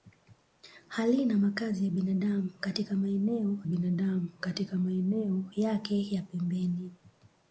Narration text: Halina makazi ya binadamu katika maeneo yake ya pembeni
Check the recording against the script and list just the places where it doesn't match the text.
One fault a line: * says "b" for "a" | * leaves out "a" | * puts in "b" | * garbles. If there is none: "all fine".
* puts in "binadamu katika maeneo"